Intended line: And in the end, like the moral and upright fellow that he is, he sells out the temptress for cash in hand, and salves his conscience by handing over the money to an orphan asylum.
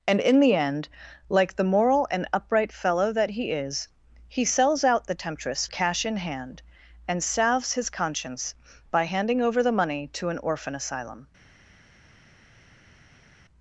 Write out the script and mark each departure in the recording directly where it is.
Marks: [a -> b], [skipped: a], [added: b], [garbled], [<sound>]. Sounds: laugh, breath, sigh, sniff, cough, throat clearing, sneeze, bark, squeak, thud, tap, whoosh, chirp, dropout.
And in the end, like the moral and upright fellow that he is, he sells out the temptress [skipped: for] cash in hand, and salves his conscience by handing over the money to an orphan asylum.